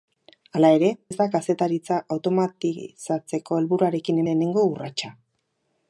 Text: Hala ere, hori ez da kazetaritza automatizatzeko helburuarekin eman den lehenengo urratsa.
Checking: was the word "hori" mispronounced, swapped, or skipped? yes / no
yes